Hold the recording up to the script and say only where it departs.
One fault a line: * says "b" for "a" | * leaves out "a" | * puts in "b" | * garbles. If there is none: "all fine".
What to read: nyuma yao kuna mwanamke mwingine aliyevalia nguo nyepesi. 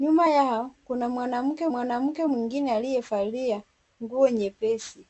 * puts in "mwanamke"